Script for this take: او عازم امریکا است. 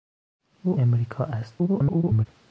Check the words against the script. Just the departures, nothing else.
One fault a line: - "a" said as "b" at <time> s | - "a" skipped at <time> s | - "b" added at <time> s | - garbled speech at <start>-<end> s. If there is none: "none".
- "عازم" skipped at 0.8 s
- garbled speech at 1.6-2.3 s